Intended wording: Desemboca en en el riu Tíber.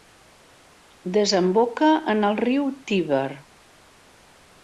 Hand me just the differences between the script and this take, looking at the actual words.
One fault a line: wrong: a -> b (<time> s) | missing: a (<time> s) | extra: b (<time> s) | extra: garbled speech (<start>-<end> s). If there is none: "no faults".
missing: en (2.2 s)